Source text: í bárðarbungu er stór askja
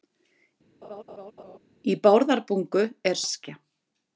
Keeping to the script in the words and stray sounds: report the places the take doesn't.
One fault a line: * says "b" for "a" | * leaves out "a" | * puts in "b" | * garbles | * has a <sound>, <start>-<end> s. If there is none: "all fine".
* has a laugh, 0.8-1.6 s
* leaves out "stór"